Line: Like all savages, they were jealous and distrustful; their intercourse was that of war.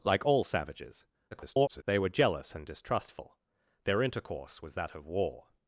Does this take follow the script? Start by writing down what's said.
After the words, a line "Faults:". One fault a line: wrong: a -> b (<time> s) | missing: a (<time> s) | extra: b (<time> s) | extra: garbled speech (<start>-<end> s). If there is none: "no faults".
Like all savages, [garbled] they were jealous and distrustful; their intercourse was that of war.
Faults:
extra: garbled speech (1.3-1.8 s)